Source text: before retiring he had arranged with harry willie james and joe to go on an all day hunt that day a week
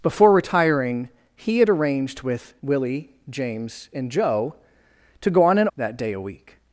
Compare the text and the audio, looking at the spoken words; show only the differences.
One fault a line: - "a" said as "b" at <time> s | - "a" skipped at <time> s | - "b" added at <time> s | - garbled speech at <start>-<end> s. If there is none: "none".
- "harry" skipped at 2.5 s
- "all day hunt" skipped at 5.7 s